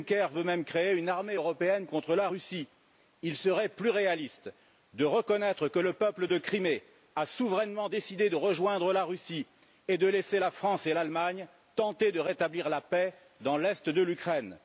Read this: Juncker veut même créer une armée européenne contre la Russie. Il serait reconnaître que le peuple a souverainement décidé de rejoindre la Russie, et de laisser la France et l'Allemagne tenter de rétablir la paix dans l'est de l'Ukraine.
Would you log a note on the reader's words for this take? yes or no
yes